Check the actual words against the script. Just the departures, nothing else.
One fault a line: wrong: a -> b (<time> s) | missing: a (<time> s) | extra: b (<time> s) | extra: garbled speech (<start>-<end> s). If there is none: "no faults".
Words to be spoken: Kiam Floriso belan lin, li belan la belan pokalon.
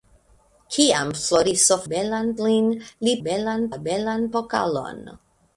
no faults